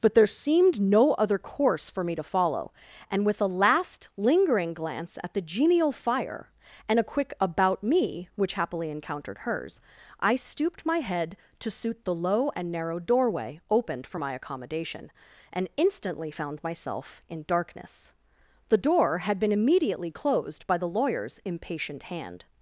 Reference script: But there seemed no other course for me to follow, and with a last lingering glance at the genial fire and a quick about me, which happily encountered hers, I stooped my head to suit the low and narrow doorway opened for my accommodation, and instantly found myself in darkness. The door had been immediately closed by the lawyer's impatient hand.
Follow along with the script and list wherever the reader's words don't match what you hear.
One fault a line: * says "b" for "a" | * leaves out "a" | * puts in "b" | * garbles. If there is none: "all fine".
all fine